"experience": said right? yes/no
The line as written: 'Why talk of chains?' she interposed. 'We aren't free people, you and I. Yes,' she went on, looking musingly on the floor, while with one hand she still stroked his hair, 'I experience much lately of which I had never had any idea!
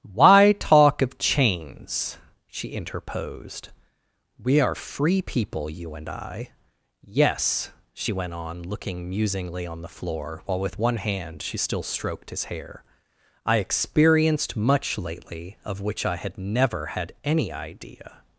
no